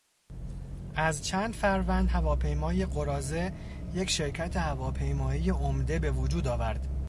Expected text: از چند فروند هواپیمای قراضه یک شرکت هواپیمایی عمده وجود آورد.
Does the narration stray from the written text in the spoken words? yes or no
yes